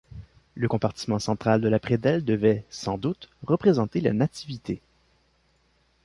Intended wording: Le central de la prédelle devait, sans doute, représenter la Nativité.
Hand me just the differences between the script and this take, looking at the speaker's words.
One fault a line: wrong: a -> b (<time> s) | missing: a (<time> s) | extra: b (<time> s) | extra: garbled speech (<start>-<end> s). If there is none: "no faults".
extra: compartiment (0.7 s)